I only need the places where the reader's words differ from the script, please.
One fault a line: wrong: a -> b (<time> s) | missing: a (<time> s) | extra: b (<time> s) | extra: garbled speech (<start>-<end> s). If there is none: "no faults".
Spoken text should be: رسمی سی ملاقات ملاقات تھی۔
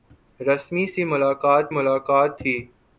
no faults